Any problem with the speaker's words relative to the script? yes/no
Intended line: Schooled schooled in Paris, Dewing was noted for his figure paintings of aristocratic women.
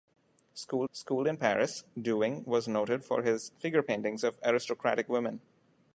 no